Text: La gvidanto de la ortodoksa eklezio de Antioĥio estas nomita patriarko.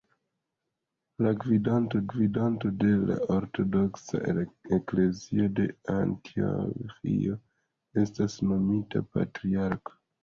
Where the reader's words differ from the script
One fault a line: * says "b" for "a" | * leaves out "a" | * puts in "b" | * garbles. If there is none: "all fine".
* puts in "gvidanto"